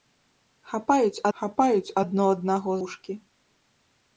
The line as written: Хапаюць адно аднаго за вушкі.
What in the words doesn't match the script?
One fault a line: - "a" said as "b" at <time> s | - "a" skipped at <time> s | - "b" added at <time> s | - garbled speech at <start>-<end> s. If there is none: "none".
- "хапаюць" added at 1.4 s
- "за" skipped at 2.8 s